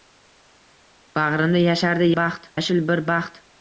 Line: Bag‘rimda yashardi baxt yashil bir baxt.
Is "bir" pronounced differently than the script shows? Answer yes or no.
no